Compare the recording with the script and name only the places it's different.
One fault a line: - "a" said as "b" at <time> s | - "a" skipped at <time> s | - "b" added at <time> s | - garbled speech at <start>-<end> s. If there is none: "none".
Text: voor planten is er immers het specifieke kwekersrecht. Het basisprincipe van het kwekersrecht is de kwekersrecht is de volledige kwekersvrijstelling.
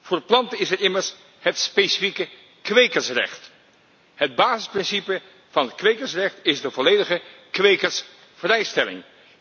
- "kwekersrecht is de" skipped at 6.7 s